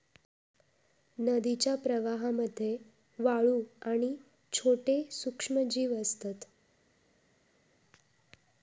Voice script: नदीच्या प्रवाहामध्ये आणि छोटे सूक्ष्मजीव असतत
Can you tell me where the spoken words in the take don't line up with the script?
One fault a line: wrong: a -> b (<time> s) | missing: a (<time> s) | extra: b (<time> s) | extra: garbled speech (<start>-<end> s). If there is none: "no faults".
extra: वाळू (3.2 s)